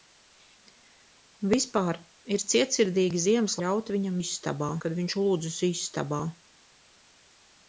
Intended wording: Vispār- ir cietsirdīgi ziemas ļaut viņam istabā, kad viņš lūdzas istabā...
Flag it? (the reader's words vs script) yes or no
no